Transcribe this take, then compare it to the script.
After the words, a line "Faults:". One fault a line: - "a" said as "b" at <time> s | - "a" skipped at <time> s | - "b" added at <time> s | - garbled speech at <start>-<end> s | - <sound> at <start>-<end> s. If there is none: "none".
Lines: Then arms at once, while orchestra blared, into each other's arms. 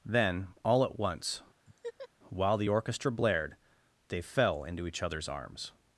Then all at once, while the orchestra blared, they fell into each other's arms.
Faults:
- "arms" said as "all" at 0.7 s
- laugh at 1.7-2.1 s
- "the" added at 2.6 s
- "they fell" added at 4.1 s